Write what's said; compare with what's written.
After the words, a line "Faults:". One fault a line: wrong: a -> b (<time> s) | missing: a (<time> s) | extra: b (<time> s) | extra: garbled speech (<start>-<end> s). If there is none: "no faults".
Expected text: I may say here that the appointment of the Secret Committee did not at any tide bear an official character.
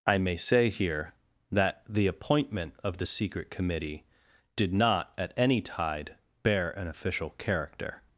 I may say here that the appointment of the Secret Committee did not at any tide bear an official character.
Faults:
no faults